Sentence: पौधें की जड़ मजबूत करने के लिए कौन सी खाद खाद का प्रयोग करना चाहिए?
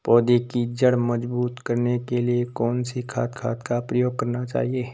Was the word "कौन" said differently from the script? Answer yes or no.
no